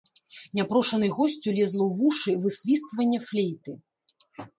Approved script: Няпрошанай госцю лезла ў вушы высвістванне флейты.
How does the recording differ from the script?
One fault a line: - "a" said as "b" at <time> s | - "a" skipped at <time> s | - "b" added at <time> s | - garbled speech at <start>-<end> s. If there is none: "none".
none